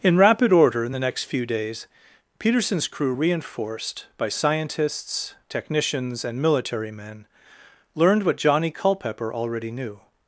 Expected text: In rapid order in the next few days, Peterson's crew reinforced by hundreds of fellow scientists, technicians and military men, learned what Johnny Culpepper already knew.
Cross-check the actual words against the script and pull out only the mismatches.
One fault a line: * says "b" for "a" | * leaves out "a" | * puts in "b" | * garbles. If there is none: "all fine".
* leaves out "hundreds of fellow"